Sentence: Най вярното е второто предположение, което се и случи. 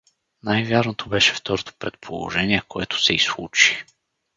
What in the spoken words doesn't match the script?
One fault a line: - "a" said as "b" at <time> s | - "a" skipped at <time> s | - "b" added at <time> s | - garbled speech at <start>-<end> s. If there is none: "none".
- "е" said as "беше" at 1.1 s